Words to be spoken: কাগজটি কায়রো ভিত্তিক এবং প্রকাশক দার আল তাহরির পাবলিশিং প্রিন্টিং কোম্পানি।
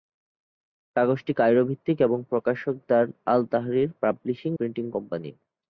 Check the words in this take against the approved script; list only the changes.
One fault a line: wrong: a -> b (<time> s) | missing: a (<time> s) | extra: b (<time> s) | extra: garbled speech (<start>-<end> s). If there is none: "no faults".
no faults